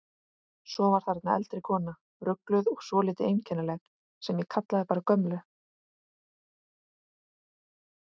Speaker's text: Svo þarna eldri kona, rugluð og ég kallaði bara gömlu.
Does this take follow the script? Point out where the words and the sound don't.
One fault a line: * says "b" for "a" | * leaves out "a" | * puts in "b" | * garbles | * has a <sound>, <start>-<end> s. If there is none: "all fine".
* puts in "var"
* puts in "svolítið einkennileg sem"